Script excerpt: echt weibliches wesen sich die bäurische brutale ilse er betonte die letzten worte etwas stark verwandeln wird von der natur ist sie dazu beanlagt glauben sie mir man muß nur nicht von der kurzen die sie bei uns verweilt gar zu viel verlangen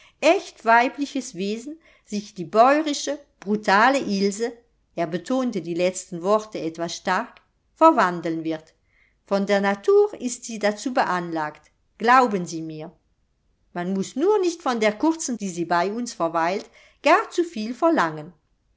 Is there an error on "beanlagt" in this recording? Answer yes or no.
no